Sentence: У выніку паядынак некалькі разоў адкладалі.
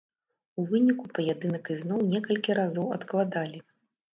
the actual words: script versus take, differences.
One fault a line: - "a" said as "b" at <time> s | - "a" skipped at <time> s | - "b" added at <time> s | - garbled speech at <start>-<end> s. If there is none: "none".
- "ізноў" added at 1.8 s